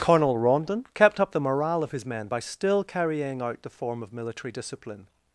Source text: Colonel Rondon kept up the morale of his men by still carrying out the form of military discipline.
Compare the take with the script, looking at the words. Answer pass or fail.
pass